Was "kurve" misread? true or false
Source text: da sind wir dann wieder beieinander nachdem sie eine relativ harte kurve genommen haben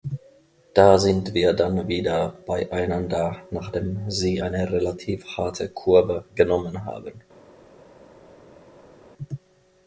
false